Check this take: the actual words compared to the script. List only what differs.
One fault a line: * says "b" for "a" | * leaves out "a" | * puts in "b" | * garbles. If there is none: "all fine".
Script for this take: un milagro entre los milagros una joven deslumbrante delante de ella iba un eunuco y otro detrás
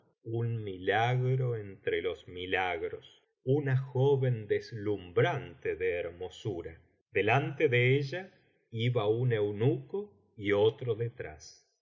* puts in "de hermosura"